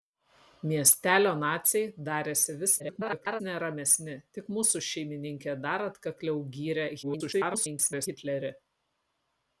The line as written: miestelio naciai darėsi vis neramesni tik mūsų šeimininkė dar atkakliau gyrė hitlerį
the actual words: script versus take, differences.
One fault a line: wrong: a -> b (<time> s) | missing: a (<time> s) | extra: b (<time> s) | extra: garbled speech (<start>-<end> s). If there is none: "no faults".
extra: garbled speech (2.8-3.4 s)
extra: garbled speech (7.0-8.1 s)